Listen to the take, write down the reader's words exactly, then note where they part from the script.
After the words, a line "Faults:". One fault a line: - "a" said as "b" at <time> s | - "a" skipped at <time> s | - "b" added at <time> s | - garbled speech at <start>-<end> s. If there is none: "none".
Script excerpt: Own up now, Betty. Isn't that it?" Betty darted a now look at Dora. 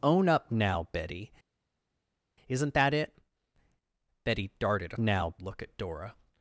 Own up now, Betty. Isn't that it?" Betty darted a now look at Dora.
Faults:
none